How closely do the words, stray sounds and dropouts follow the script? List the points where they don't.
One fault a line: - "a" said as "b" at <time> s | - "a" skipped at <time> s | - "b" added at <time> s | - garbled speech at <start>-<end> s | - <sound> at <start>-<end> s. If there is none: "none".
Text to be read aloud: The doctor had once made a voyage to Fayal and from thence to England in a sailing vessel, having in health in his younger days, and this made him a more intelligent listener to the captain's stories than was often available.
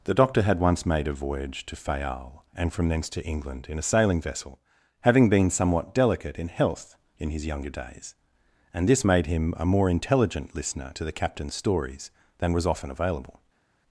- "been somewhat delicate" added at 5.3 s